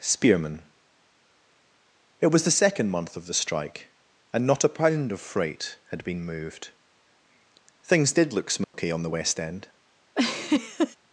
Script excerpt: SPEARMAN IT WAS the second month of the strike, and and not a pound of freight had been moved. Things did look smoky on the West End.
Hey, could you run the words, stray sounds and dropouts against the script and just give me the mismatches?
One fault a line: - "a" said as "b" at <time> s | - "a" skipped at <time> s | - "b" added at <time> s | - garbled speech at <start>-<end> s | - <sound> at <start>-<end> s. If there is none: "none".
- "and" skipped at 4.5 s
- dropout at 8.6-8.7 s
- laugh at 10.2-11.0 s